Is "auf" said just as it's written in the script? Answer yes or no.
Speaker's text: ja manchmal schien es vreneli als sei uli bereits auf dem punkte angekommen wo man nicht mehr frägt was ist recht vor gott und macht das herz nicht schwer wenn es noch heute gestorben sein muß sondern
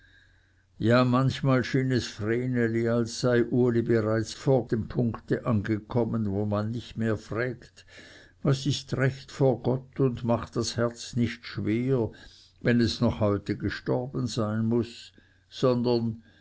no